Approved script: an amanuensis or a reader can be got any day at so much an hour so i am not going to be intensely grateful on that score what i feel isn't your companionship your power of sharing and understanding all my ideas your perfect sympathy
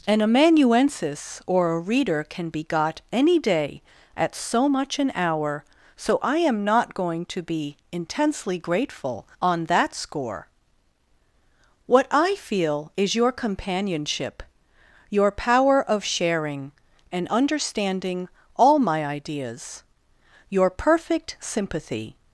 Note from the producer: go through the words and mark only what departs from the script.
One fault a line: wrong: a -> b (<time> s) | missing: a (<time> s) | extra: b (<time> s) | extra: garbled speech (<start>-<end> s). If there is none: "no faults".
wrong: isn't -> is (13.0 s)